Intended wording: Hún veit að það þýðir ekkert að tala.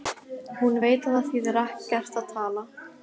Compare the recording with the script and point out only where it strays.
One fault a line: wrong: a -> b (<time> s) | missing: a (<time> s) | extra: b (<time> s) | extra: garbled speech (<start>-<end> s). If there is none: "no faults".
no faults